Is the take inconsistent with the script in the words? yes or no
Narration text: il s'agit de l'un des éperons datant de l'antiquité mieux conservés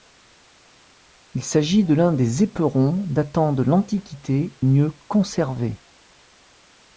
no